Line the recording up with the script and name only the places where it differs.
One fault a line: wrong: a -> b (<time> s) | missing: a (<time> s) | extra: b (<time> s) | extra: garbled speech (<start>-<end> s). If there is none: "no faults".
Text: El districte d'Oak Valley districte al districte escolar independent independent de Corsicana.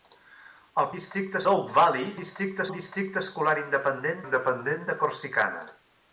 no faults